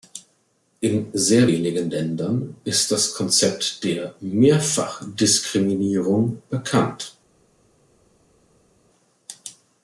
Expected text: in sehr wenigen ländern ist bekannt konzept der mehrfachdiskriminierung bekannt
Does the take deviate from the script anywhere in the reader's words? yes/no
yes